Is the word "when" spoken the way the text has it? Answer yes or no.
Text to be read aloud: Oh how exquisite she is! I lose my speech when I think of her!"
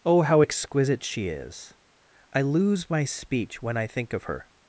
yes